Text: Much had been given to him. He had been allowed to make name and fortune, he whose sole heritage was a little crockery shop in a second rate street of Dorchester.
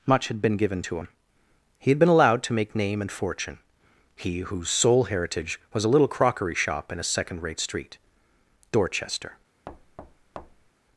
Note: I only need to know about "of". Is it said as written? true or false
false